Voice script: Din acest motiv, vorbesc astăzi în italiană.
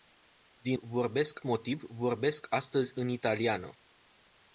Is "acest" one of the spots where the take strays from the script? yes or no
yes